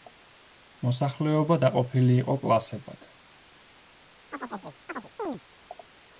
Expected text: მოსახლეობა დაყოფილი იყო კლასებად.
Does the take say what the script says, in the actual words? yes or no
yes